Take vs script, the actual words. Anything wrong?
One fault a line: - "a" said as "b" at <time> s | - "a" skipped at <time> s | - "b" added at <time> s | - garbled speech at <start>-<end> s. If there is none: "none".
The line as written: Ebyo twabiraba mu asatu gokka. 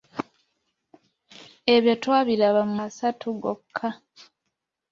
none